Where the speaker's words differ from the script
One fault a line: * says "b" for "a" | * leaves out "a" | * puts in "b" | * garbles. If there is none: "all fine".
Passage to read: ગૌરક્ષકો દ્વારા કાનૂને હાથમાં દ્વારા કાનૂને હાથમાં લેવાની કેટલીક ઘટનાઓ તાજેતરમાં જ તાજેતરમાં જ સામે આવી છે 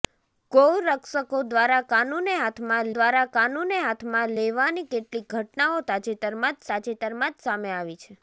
all fine